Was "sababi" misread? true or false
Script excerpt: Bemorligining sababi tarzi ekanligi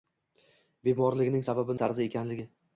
false